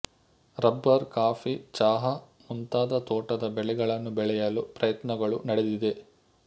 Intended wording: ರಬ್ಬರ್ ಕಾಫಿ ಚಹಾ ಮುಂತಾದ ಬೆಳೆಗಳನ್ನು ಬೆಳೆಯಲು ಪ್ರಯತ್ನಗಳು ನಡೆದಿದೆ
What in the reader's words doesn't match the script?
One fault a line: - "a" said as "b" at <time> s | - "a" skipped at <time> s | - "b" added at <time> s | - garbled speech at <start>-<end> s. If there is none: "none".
- "ತೋಟದ" added at 3.1 s